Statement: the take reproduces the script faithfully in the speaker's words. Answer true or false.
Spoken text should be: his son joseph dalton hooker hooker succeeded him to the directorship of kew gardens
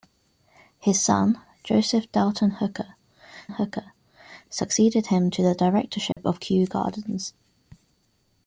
true